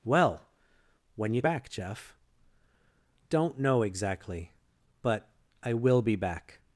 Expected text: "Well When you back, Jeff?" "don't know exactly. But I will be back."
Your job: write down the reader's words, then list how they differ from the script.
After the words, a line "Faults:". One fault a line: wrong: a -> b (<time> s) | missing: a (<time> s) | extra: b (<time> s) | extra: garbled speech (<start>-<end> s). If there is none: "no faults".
"Well When you back, Jeff?" "don't know exactly. But I will be back."
Faults:
no faults